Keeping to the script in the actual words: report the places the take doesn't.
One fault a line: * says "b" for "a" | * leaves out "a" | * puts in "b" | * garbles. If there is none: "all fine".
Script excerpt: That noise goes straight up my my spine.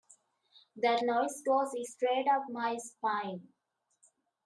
* leaves out "my"